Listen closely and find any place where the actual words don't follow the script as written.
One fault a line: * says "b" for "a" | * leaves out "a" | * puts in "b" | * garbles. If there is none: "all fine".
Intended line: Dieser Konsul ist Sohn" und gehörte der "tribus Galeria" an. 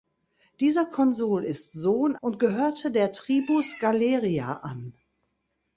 all fine